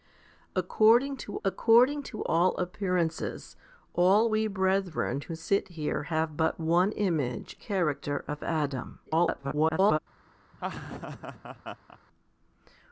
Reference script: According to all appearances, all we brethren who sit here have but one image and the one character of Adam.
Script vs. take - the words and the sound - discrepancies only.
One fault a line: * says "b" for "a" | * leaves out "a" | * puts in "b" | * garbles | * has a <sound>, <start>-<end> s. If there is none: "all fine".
* puts in "according to"
* leaves out "and the one"
* garbles
* has a laugh, 10.5-12.0 s